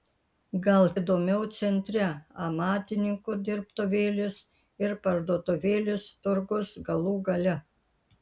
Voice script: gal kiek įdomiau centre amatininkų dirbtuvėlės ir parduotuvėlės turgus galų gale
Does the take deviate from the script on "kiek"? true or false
true